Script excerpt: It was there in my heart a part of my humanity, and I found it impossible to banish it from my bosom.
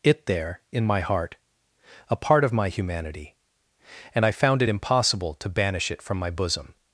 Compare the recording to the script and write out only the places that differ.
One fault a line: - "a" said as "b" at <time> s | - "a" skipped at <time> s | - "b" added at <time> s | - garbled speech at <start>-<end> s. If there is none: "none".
- "was" skipped at 0.2 s